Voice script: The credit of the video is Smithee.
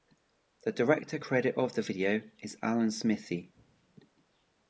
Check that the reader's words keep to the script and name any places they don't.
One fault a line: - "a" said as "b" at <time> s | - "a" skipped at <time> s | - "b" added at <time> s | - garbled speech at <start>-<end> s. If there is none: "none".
- "director" added at 0.7 s
- "Alan" added at 2.6 s